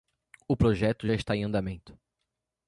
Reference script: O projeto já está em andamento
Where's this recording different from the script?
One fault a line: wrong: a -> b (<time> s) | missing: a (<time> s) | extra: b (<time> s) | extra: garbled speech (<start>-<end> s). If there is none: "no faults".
no faults